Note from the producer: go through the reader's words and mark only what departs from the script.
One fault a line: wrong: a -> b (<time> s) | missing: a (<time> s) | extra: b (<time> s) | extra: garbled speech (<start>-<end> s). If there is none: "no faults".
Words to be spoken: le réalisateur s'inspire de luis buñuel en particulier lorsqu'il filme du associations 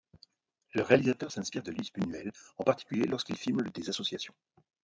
wrong: du -> des (3.7 s)